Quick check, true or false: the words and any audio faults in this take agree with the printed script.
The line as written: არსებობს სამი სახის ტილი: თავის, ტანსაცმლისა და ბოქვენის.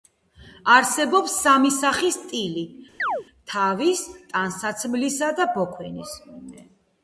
false